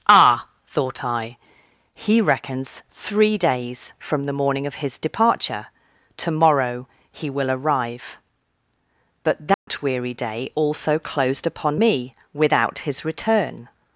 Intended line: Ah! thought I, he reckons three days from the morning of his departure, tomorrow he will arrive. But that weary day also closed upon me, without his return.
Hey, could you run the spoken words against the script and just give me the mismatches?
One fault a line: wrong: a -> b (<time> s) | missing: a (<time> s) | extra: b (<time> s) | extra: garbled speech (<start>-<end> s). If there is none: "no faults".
no faults